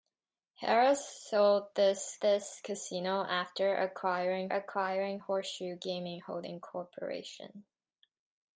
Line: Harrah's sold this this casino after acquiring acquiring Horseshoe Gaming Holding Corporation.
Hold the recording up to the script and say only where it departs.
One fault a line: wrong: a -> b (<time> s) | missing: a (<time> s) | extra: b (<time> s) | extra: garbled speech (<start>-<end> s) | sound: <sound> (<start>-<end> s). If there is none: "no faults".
no faults